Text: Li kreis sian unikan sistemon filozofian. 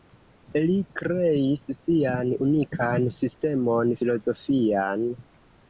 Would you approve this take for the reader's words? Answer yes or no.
yes